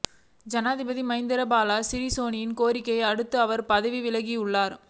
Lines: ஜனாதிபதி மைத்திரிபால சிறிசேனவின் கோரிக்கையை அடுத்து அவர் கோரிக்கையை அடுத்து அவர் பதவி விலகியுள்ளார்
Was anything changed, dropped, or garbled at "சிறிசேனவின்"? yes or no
no